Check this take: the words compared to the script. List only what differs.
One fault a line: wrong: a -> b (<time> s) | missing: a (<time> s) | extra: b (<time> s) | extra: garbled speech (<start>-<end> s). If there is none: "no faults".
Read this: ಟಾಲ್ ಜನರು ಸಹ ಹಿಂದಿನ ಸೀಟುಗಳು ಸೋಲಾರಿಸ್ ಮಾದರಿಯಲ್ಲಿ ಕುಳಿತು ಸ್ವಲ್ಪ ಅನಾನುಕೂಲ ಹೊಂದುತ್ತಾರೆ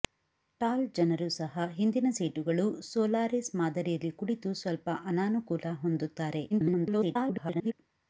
extra: garbled speech (6.5-7.7 s)